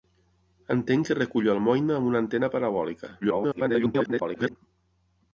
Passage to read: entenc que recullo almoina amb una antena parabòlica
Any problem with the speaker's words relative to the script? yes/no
yes